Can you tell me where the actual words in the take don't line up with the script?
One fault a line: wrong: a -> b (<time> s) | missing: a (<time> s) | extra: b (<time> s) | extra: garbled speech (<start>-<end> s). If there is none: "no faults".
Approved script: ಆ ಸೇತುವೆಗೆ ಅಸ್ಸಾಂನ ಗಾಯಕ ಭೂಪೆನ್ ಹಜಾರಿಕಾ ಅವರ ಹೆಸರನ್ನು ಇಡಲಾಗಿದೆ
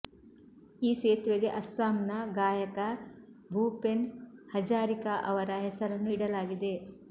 wrong: ಆ -> ಈ (0.8 s)